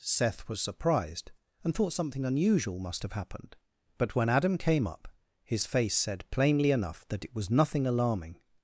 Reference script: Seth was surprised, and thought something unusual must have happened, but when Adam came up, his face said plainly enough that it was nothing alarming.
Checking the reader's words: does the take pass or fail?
pass